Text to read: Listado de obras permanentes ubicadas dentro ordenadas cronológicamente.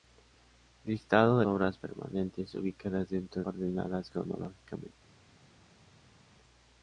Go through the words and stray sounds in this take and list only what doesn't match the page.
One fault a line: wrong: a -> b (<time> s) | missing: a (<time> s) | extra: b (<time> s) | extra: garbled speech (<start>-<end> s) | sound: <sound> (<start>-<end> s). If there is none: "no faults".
no faults